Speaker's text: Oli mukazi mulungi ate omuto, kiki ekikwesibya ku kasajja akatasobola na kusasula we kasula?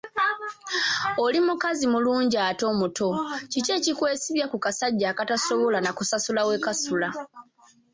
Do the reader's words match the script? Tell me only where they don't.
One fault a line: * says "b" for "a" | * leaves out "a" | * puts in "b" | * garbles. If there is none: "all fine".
all fine